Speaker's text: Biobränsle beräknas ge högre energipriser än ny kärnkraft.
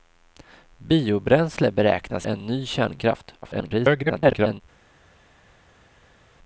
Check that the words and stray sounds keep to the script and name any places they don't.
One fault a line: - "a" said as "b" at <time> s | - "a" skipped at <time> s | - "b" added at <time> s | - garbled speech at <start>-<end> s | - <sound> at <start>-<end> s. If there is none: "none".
- "ge högre energipriser" skipped at 2.3 s
- garbled speech at 3.4-4.6 s